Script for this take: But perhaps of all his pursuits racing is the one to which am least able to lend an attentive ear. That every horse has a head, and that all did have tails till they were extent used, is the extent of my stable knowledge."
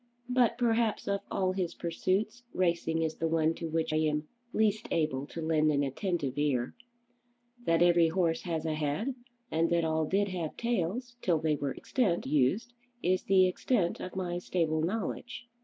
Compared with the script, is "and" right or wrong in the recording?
right